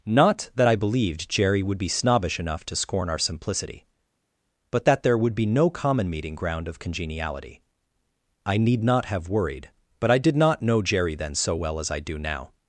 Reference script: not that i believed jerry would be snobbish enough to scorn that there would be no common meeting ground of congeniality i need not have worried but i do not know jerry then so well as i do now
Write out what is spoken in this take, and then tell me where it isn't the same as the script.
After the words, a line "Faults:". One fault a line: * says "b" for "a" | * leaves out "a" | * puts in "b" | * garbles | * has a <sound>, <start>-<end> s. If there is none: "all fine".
not that i believed jerry would be snobbish enough to scorn our simplicity but that there would be no common meeting ground of congeniality i need not have worried but i did not know jerry then so well as i do now
Faults:
* puts in "our simplicity but"
* says "did" for "do"